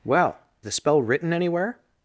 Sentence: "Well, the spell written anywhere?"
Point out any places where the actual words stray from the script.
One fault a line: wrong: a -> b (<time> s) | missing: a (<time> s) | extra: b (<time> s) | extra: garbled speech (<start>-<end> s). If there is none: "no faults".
no faults